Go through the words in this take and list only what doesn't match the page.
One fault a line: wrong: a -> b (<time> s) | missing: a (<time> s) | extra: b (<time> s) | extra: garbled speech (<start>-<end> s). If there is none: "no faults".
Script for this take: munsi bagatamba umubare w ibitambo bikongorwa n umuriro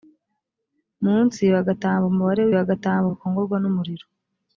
wrong: ibitambo -> bagatamba (2.5 s)